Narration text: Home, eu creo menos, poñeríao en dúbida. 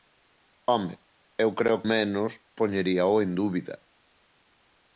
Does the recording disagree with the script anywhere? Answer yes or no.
no